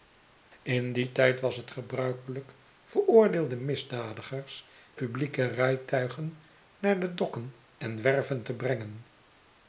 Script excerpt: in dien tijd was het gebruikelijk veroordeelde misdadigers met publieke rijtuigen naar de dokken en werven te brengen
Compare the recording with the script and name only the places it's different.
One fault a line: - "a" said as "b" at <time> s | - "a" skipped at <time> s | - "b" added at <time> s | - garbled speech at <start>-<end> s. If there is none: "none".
- "met" skipped at 4.7 s